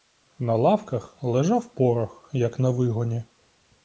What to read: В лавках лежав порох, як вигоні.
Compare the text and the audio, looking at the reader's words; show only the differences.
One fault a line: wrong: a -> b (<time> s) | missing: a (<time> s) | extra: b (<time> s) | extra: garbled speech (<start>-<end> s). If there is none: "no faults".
wrong: В -> На (0.4 s)
extra: на (2.6 s)